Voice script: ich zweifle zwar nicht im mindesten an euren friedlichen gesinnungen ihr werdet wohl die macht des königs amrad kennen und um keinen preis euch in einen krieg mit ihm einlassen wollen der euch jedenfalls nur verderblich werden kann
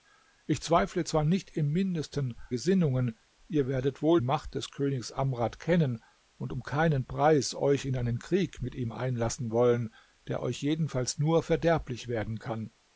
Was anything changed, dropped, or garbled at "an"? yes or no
yes